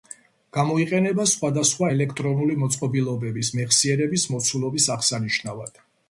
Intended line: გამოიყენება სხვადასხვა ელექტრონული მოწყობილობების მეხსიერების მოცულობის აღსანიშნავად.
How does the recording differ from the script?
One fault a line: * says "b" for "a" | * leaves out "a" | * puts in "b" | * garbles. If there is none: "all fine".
all fine